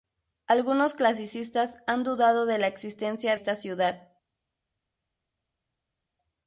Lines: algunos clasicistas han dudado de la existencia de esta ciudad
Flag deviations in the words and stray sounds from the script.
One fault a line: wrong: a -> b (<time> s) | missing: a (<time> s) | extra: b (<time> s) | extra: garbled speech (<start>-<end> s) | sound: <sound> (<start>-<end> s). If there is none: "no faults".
missing: de (3.4 s)